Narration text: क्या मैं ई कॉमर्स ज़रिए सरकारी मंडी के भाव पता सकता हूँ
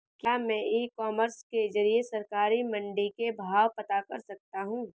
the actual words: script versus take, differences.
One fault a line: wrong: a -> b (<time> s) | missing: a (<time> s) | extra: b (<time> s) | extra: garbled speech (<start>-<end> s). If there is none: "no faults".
extra: के (1.4 s)
extra: कर (4.0 s)